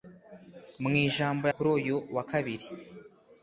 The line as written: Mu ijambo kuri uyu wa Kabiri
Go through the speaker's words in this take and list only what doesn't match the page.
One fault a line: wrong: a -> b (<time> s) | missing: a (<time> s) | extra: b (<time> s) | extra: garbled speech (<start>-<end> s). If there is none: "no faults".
no faults